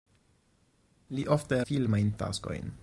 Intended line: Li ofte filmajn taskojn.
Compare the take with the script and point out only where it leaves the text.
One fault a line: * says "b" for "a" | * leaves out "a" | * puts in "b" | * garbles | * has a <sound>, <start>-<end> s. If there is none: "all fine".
all fine